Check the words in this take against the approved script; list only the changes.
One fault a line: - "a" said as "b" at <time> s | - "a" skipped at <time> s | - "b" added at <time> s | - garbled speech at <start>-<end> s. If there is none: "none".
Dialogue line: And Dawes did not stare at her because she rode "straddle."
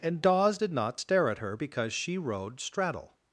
none